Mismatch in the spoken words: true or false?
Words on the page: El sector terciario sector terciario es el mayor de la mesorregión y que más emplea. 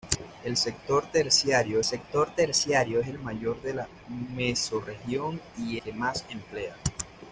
false